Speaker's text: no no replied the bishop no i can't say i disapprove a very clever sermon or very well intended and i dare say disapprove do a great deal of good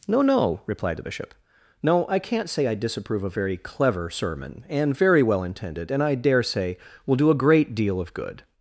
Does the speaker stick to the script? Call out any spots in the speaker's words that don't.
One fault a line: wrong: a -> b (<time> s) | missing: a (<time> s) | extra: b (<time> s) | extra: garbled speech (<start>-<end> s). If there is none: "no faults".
wrong: or -> and (4.7 s)
wrong: disapprove -> will (7.0 s)